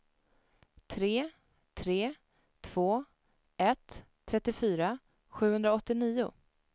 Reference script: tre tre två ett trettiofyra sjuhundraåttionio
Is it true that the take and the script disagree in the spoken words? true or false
false